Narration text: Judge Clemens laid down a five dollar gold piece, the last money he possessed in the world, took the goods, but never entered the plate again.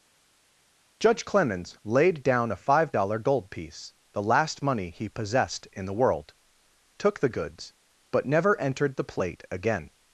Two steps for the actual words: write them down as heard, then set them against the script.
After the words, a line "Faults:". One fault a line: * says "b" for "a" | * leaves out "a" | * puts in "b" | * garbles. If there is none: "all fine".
Judge Clemens laid down a five dollar gold piece, the last money he possessed in the world, took the goods, but never entered the plate again.
Faults:
all fine